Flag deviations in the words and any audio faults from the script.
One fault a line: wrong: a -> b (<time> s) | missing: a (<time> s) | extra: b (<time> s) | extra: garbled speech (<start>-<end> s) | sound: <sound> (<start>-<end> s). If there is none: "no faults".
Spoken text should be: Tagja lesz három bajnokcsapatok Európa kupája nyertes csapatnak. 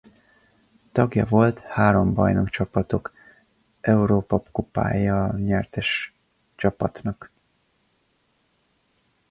wrong: lesz -> volt (1.2 s)